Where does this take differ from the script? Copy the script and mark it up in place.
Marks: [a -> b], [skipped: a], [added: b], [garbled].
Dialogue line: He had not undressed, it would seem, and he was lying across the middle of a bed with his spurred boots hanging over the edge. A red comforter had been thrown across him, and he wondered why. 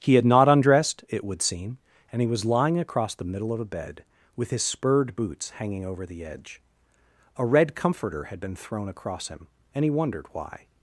He had not undressed, it would seem, and he was lying across the middle of a bed with his spurred boots hanging over the edge. A red comforter had been thrown across him, and he wondered why.